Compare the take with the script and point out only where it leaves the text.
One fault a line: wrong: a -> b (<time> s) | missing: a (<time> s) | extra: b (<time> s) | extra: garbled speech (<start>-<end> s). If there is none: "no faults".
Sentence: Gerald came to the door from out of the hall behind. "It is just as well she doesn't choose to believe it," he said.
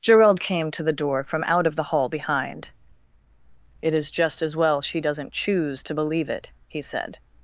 no faults